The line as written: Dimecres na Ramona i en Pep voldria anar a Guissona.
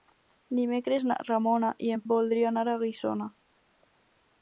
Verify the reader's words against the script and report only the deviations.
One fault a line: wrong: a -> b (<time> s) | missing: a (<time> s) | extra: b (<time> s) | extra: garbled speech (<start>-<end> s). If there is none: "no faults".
missing: Pep (2.0 s)